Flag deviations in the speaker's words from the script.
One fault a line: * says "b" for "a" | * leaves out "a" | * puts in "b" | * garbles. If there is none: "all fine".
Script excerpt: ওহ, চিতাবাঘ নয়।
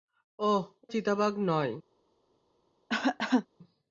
all fine